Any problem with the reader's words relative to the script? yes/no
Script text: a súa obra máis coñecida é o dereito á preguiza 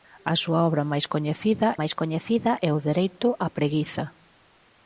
yes